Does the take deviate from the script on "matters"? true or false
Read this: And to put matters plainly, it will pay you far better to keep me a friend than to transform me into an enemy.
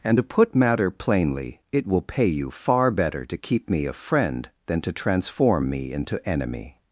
true